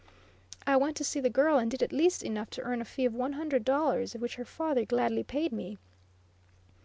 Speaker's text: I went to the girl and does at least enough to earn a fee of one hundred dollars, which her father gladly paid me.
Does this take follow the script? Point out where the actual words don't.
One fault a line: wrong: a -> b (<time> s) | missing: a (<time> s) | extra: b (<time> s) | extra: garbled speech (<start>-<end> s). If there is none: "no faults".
extra: see (1.0 s)
wrong: does -> did (1.7 s)